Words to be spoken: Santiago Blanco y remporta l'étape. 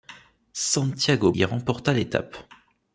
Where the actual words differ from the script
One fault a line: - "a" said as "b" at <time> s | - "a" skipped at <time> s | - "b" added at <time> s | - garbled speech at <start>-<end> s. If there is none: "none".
- "Blanco" skipped at 1.3 s